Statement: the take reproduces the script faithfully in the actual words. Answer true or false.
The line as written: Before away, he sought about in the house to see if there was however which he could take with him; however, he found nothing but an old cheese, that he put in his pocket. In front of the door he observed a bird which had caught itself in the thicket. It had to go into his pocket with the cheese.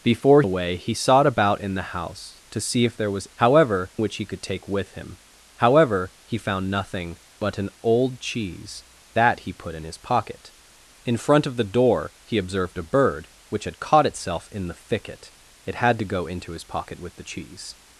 true